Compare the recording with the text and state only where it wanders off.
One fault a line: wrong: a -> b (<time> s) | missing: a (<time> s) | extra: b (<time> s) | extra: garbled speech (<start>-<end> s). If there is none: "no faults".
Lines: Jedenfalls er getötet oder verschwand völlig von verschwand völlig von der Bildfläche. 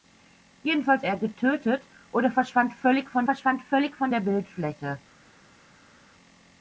no faults